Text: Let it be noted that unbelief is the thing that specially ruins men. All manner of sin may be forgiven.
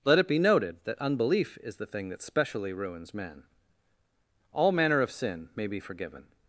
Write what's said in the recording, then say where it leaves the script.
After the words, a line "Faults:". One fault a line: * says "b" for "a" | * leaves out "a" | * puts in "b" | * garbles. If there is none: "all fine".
Let it be noted that unbelief is the thing that specially ruins men. All manner of sin may be forgiven.
Faults:
all fine